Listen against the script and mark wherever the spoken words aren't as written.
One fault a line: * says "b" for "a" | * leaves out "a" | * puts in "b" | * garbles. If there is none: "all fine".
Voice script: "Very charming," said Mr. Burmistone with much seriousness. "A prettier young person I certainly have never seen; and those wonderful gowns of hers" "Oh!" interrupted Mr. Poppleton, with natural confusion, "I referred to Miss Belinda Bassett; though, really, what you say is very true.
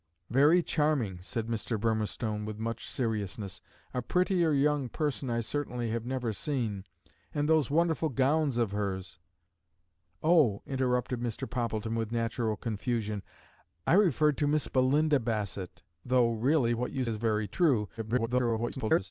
* leaves out "say"
* garbles